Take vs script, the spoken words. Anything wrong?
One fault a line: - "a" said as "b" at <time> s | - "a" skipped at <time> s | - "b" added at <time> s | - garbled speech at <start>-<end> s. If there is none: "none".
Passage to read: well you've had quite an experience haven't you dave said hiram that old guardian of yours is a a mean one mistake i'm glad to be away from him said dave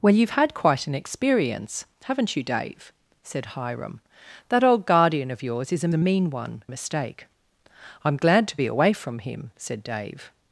none